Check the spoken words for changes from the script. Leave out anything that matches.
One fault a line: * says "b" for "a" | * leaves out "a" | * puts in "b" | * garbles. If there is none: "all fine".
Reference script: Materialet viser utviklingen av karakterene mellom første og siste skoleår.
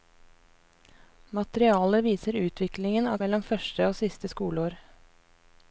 * leaves out "karakterene"